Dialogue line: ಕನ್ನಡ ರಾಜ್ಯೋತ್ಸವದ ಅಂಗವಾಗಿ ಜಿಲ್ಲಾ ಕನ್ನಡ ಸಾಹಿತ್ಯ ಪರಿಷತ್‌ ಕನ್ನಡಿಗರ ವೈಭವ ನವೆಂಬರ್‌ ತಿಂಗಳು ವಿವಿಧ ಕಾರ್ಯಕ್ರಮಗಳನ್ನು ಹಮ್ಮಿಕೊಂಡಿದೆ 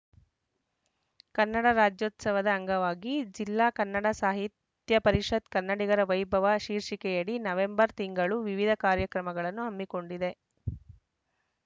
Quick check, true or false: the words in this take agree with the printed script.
false